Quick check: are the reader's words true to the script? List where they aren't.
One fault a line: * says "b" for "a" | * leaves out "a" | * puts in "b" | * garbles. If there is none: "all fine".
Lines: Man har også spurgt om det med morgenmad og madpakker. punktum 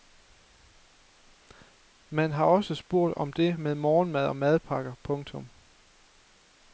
all fine